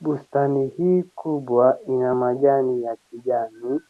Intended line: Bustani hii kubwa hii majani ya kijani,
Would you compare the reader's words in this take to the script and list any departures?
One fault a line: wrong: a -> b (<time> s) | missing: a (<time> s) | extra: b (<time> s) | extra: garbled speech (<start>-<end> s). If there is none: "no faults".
wrong: hii -> ina (1.9 s)